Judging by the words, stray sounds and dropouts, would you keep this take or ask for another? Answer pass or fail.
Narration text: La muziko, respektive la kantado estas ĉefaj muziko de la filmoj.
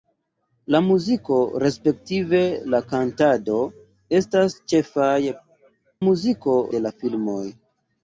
pass